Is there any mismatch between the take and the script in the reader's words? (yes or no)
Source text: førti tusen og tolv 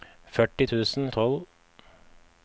no